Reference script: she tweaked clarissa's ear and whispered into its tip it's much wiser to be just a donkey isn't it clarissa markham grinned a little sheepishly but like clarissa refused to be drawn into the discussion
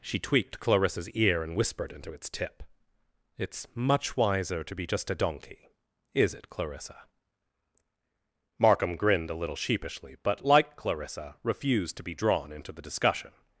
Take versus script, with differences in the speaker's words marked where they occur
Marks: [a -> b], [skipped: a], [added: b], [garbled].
she tweaked clarissa's ear and whispered into its tip it's much wiser to be just a donkey [isn't -> is] it clarissa markham grinned a little sheepishly but like clarissa refused to be drawn into the discussion